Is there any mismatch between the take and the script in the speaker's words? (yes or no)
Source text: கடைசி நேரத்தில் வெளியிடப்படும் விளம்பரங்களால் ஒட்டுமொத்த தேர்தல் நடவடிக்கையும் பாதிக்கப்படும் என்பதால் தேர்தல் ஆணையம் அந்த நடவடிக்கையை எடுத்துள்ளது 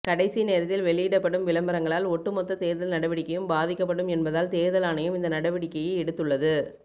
yes